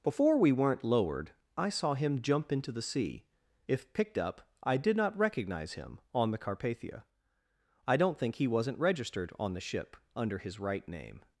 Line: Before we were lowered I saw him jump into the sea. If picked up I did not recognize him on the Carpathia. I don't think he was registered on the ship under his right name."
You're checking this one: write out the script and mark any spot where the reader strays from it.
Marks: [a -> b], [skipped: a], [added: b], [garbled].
Before we [were -> weren't] lowered I saw him jump into the sea. If picked up I did not recognize him on the Carpathia. I don't think he [was -> wasn't] registered on the ship under his right name."